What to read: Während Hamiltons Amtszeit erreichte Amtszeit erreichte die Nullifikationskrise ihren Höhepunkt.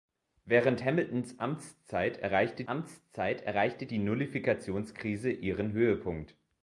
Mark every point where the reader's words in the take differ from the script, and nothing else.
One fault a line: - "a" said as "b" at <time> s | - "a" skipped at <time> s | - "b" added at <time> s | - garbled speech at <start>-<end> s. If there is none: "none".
none